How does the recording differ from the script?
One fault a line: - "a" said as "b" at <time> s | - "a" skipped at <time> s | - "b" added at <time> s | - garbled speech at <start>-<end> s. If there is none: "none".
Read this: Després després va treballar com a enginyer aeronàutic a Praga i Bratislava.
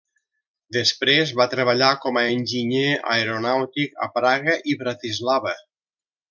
- "després" skipped at 1.3 s